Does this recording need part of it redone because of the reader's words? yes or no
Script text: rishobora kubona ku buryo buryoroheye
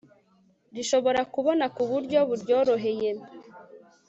no